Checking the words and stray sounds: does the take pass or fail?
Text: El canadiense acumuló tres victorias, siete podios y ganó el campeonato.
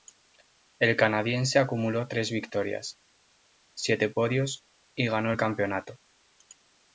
pass